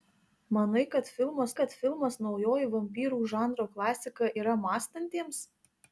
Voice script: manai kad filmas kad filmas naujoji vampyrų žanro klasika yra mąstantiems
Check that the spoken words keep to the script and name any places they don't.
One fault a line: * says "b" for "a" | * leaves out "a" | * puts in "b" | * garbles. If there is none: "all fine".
all fine